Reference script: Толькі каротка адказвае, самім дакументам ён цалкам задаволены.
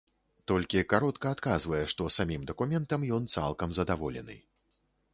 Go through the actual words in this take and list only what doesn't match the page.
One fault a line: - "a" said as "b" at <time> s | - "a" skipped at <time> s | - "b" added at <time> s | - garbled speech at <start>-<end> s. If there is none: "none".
- "што" added at 1.9 s